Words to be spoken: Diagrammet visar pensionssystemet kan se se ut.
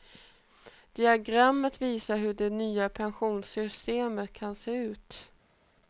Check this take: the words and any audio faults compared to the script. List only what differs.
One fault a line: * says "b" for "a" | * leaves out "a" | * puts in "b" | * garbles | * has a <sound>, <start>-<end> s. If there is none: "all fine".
* puts in "hur det nya"
* leaves out "se"